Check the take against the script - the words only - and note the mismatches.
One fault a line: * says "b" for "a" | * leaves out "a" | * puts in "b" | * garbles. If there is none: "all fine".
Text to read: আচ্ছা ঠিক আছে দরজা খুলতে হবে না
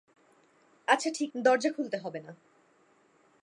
* leaves out "আছে"